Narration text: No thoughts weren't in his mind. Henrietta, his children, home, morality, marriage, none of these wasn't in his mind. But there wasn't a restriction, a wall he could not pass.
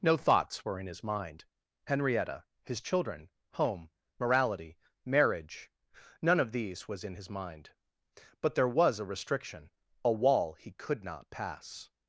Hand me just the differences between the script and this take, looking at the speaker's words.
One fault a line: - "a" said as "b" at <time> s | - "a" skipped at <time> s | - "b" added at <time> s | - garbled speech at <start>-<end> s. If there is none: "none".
- "weren't" said as "were" at 0.7 s
- "wasn't" said as "was" at 6.9 s
- "wasn't" said as "was" at 8.7 s